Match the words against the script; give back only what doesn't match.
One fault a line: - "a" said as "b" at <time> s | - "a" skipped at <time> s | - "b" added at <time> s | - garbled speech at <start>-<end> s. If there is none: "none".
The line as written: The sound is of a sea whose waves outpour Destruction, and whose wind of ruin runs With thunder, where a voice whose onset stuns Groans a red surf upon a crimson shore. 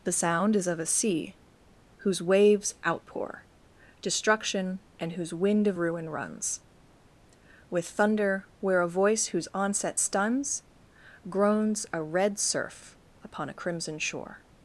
none